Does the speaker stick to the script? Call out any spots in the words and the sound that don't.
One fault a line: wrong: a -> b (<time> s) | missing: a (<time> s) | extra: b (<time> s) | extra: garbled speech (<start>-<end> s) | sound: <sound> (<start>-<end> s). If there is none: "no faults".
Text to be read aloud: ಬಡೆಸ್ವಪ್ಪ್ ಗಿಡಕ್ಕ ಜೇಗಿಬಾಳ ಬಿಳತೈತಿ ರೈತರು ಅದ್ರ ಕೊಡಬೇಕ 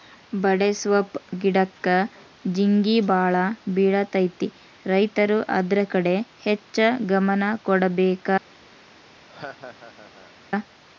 extra: ಕಡೆ ಹೆಚ್ಚ ಗಮನ (5.9 s)
sound: laugh (9.3-10.3 s)